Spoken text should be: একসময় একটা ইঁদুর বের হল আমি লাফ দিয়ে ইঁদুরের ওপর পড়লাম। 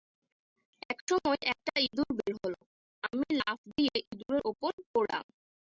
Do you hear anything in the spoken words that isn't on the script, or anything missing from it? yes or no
no